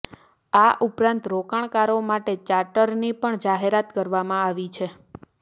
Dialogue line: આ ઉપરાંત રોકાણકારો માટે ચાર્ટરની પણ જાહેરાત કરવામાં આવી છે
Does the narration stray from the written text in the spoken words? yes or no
no